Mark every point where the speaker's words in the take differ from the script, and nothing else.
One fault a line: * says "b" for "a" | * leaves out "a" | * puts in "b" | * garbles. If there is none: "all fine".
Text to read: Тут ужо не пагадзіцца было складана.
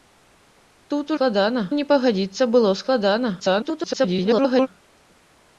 * says "складана" for "ужо"
* garbles